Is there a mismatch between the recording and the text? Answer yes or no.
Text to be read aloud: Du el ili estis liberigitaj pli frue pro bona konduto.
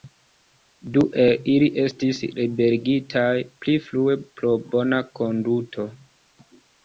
no